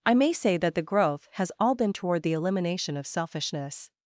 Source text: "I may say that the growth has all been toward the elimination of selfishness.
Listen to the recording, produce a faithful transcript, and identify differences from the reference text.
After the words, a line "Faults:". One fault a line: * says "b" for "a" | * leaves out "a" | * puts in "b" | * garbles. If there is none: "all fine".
"I may say that the growth has all been toward the elimination of selfishness.
Faults:
all fine